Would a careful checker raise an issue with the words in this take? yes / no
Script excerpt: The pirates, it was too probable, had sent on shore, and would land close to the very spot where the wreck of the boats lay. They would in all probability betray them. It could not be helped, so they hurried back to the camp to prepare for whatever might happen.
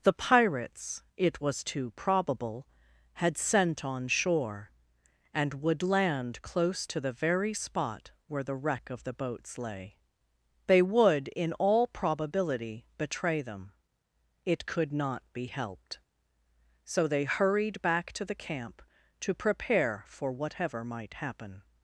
no